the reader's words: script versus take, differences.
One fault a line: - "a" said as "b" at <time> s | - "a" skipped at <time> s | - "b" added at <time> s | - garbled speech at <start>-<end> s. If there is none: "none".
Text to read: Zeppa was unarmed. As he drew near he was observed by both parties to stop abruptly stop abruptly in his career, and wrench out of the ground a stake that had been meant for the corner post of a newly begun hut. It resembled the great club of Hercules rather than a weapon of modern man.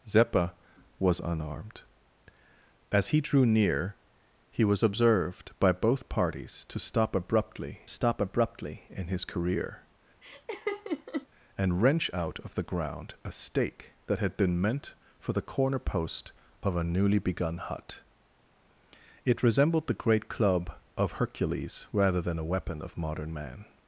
none